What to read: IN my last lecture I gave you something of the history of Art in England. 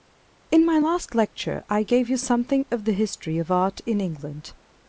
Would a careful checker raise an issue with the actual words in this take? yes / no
no